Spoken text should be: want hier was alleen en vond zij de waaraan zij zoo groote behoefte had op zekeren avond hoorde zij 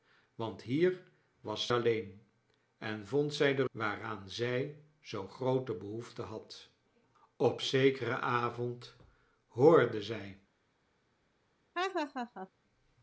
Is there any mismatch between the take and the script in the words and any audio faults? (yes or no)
yes